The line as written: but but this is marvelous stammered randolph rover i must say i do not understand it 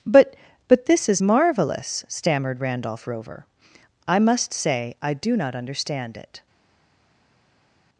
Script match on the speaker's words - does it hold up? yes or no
yes